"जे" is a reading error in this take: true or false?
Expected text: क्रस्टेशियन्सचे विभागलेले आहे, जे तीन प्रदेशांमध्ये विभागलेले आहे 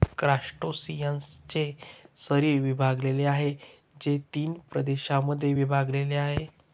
false